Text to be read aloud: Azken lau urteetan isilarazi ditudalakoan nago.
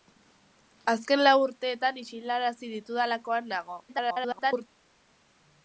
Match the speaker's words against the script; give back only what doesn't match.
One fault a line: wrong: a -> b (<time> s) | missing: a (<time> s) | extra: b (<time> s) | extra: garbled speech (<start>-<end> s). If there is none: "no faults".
extra: garbled speech (3.9-4.7 s)